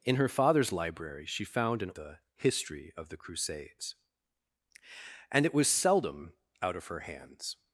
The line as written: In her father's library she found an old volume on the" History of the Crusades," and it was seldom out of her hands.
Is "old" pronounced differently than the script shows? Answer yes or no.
yes